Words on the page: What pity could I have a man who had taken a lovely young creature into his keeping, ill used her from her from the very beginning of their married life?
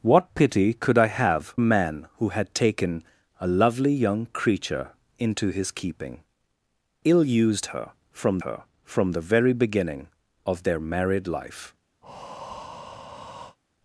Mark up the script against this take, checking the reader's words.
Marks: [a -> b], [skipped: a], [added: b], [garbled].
What pity could I have a man who had taken a lovely young creature into his keeping, ill used her from her from the very beginning of their married life?